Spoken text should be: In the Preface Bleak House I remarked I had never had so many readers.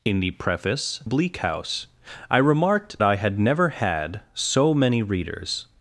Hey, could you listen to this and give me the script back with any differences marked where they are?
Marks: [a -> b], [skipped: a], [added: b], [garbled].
In the Preface Bleak House I remarked I had never had so many readers.